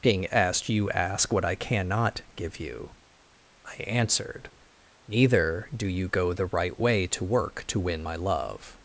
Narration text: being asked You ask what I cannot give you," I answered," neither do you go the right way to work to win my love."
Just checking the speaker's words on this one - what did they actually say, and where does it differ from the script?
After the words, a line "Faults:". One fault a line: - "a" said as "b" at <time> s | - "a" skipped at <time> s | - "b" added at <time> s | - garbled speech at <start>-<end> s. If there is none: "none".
being asked You ask what I cannot give you," I answered," neither do you go the right way to work to win my love."
Faults:
none